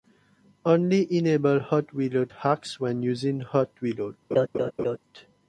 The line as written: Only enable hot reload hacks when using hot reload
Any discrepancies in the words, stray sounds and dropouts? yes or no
yes